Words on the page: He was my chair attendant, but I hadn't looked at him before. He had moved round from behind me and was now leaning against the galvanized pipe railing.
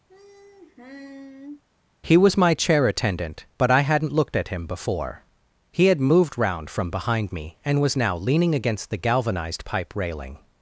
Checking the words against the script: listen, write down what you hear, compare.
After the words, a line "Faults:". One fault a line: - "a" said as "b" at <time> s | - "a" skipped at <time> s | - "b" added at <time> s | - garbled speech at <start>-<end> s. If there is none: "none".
He was my chair attendant, but I hadn't looked at him before. He had moved round from behind me and was now leaning against the galvanized pipe railing.
Faults:
none